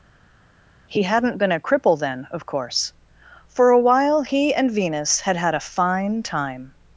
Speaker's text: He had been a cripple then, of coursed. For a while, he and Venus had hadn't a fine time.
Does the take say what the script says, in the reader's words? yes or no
no